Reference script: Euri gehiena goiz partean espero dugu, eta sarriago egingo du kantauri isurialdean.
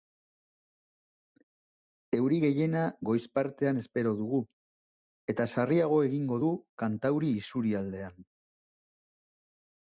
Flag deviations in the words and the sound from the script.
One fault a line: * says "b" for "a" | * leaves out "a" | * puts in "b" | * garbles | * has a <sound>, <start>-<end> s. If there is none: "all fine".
all fine